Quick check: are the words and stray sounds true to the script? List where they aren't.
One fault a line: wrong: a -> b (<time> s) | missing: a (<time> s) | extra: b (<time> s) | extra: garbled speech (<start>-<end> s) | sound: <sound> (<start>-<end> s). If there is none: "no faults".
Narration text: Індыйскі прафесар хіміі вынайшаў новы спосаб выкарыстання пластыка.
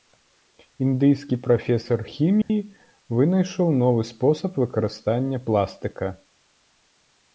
sound: dropout (2.4-2.5 s)